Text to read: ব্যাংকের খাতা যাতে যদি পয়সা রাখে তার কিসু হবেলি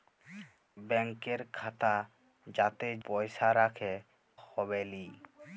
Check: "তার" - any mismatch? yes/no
yes